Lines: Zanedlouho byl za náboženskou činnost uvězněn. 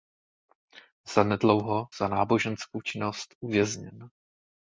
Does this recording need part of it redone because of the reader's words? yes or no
yes